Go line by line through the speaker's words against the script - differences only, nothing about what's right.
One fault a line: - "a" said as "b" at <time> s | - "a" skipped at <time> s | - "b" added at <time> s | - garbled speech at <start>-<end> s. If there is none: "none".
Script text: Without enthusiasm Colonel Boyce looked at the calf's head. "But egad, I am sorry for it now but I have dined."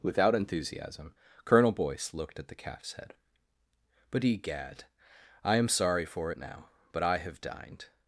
none